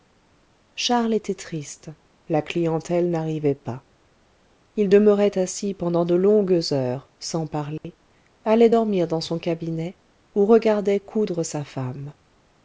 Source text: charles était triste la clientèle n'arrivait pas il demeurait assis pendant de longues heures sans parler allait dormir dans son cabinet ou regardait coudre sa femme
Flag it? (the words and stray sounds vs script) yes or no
yes